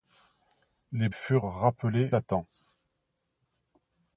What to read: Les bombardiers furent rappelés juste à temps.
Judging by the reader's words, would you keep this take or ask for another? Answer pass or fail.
fail